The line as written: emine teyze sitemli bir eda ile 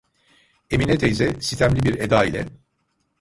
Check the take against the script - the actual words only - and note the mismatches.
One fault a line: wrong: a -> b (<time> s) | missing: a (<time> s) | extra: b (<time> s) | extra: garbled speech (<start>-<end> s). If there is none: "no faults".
no faults